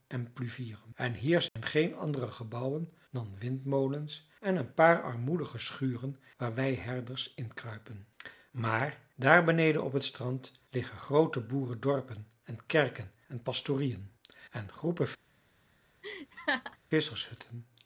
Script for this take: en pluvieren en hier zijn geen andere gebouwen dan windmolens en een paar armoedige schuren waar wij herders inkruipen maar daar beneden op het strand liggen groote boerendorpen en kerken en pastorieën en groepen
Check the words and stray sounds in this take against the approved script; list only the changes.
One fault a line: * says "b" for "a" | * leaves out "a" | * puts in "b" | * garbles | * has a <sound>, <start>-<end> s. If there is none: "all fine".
* has a dropout, 1.5-1.6 s
* has a laugh, 16.0-16.8 s